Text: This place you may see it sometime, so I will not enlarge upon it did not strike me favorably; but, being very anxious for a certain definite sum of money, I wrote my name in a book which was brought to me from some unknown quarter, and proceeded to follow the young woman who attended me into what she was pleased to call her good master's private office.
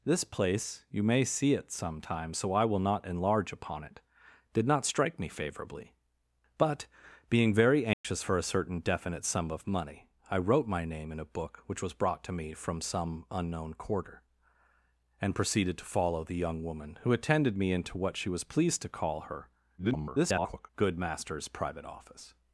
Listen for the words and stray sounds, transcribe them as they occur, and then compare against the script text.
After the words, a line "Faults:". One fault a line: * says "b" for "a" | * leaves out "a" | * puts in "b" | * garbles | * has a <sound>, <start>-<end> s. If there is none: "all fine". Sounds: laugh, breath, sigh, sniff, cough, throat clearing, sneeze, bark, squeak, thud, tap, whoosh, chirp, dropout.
This place you may see it sometime, so I will not enlarge upon it did not strike me favorably; but, being very anxious for a certain definite sum of money, I wrote my name in a book which was brought to me from some unknown quarter, and proceeded to follow the young woman who attended me into what she was pleased to call her [garbled] good master's private office.
Faults:
* has a dropout, 7.9-8.0 s
* garbles